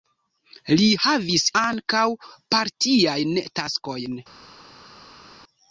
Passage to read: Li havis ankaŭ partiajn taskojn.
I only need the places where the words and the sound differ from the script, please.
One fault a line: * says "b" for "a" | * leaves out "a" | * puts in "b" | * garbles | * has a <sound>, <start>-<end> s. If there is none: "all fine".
all fine